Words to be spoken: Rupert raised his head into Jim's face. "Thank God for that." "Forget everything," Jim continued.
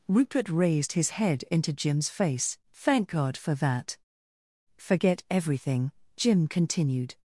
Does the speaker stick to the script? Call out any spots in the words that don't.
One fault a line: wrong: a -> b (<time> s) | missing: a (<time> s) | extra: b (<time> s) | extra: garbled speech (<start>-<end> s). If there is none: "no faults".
no faults